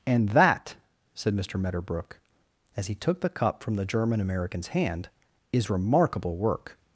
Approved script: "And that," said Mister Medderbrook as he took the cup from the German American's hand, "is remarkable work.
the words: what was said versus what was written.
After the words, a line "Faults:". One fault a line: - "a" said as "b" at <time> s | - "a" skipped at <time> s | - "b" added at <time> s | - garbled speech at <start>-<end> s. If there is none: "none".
"And that," said Mister Medderbrook as he took the cup from the German American's hand, "is remarkable work.
Faults:
none